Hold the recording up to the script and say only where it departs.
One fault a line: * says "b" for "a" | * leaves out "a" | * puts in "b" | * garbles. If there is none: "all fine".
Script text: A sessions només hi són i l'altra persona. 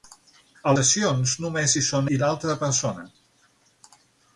all fine